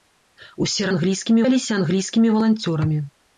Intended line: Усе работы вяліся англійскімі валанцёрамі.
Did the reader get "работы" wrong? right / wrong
wrong